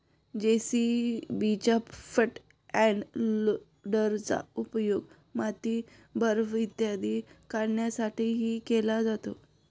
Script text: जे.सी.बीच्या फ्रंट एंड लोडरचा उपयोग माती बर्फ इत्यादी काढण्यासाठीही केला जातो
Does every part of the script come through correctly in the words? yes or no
yes